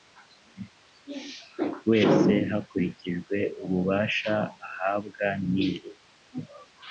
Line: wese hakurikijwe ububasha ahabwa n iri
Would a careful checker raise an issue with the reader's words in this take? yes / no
no